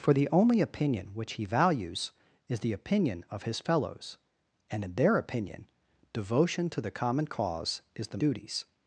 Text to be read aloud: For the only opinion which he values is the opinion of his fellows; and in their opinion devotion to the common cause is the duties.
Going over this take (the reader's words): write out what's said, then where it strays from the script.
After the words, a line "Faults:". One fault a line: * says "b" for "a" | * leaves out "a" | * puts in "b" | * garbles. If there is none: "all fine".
For the only opinion which he values is the opinion of his fellows; and in their opinion devotion to the common cause is the duties.
Faults:
all fine